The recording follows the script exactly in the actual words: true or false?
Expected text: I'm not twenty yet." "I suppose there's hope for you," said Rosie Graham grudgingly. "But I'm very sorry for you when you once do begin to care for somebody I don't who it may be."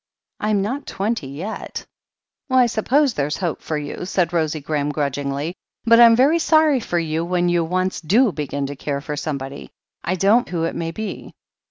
true